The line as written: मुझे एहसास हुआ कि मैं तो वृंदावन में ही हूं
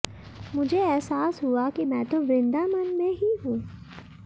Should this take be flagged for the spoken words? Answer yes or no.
no